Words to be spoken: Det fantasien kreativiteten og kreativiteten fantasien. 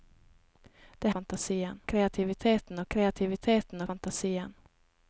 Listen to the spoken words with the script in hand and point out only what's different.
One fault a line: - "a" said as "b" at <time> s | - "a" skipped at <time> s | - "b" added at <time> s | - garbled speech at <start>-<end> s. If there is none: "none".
none